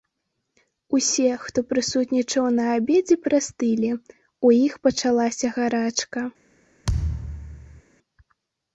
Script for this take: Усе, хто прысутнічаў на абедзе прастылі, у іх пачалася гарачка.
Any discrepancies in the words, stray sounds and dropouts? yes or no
yes